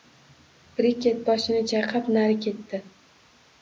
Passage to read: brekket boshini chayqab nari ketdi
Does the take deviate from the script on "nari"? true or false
false